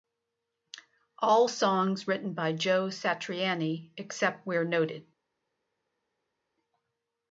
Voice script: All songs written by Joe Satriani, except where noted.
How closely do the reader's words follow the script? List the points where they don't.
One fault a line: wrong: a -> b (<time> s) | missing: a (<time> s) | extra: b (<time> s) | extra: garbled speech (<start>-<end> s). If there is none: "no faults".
no faults